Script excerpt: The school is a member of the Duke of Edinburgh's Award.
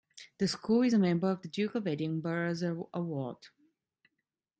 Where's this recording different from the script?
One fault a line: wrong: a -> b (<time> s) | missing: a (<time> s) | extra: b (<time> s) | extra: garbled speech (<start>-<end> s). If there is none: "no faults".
no faults